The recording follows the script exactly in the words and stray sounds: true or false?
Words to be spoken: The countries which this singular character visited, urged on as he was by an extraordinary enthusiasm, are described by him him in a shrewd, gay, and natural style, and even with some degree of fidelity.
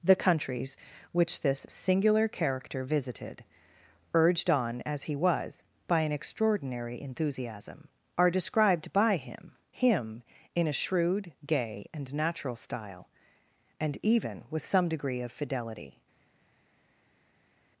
true